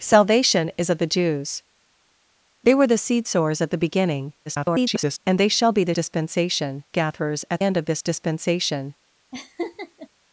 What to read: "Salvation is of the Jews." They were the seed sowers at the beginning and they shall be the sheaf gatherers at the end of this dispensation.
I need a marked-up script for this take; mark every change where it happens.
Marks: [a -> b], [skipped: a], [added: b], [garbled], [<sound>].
"Salvation is of the Jews." They were the seed sowers at the beginning [garbled] and they shall be the [sheaf -> dispensation] gatherers at [skipped: the] end of this dispensation. [laugh]